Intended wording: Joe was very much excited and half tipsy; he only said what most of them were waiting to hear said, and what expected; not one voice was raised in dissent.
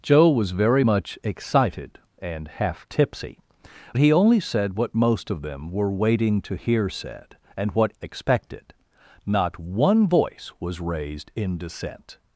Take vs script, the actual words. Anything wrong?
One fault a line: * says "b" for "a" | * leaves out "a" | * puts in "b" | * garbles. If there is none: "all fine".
all fine